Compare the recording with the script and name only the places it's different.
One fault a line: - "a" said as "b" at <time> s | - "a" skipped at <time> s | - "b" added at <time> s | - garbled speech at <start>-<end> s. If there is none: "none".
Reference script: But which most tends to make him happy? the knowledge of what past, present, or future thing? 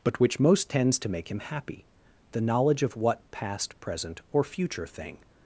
none